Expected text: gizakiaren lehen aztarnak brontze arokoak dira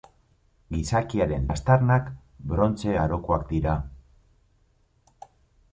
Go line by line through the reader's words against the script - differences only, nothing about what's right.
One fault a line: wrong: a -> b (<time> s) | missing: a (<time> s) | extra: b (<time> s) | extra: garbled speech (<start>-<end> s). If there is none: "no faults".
missing: lehen (1.4 s)